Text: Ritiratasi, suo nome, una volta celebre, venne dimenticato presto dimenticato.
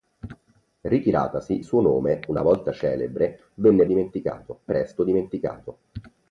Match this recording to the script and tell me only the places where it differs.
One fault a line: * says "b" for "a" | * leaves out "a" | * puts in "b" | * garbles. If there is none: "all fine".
all fine